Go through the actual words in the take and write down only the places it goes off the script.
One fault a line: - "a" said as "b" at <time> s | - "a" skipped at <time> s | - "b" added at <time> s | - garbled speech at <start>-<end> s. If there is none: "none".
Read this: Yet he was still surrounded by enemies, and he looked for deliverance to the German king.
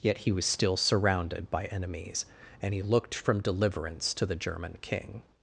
- "for" said as "from" at 3.1 s